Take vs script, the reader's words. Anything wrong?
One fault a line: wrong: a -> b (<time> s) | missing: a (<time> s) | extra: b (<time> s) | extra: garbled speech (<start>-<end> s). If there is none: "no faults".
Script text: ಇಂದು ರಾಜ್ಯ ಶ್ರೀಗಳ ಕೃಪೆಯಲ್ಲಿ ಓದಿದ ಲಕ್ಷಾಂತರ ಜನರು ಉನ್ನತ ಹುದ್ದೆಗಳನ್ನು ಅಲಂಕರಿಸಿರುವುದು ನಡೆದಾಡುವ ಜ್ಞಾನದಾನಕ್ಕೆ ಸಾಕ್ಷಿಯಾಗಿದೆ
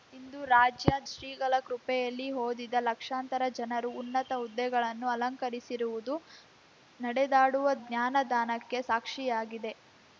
no faults